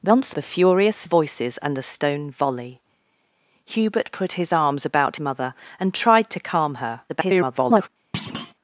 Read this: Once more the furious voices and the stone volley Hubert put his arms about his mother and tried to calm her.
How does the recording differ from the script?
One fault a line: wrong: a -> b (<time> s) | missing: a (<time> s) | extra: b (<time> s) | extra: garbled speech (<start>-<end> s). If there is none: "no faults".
missing: more (0.3 s)
missing: his (5.2 s)
extra: garbled speech (7.1-7.9 s)